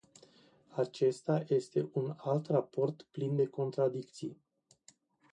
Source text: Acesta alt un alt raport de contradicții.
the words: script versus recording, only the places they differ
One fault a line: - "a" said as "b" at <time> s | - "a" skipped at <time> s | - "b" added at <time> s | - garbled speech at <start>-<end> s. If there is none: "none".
- "alt" said as "este" at 1.5 s
- "plin" added at 3.1 s